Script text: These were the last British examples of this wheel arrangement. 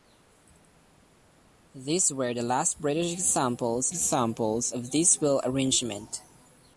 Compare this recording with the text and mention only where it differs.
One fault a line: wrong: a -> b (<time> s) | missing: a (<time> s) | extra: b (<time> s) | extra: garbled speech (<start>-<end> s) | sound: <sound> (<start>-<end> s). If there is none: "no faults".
extra: examples (3.9 s)